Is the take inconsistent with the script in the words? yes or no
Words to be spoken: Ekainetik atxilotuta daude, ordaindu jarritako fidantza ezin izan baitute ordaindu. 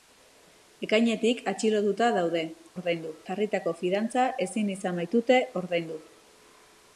no